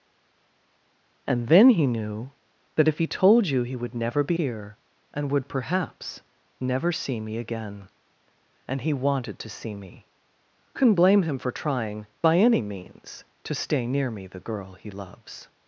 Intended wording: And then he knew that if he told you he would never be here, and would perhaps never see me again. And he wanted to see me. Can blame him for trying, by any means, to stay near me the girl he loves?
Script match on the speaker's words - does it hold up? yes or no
yes